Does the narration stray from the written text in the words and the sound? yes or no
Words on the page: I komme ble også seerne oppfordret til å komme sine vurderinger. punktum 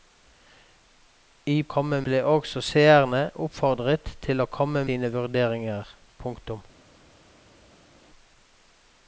no